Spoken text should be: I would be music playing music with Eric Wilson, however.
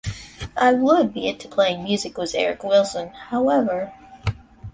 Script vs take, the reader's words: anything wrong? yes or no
yes